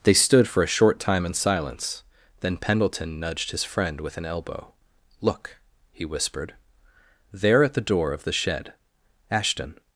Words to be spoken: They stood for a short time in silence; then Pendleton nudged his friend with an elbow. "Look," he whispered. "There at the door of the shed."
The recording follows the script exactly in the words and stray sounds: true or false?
false